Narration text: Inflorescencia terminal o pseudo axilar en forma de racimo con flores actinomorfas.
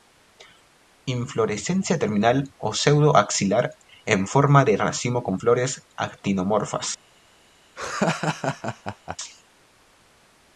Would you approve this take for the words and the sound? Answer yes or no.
no